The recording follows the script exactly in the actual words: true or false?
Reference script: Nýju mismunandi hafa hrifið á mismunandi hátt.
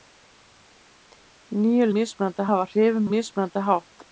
true